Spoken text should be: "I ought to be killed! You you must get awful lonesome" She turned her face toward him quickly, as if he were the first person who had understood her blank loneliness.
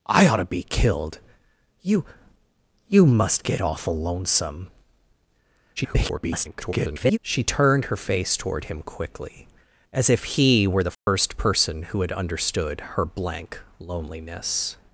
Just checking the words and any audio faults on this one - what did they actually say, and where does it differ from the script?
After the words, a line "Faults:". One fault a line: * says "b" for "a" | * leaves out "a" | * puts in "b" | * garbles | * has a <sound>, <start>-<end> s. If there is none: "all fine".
"I ought to be killed! You you must get awful lonesome" [garbled] She turned her face toward him quickly, as if he were the first person who had understood her blank loneliness.
Faults:
* garbles
* has a dropout, 10.9-11.1 s